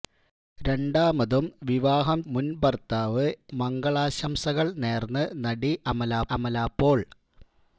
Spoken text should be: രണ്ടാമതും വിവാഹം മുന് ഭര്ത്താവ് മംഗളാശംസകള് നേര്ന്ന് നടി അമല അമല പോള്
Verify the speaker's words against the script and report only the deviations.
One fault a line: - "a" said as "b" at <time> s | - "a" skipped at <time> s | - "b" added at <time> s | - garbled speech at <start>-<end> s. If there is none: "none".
none